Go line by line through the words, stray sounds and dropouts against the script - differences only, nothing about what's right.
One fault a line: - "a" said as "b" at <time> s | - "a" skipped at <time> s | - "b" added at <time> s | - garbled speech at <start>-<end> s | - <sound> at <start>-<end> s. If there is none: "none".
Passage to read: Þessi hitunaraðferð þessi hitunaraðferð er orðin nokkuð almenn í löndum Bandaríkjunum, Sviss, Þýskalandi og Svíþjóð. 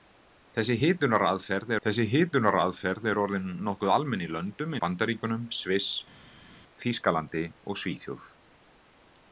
none